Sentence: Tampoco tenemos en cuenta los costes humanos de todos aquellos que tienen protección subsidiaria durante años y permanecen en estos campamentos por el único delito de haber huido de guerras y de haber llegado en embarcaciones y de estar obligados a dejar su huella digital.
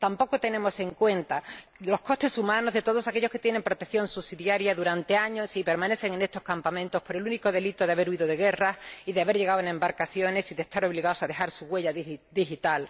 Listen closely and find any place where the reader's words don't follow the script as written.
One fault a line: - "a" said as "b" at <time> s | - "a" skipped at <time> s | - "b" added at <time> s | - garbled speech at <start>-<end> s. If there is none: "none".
none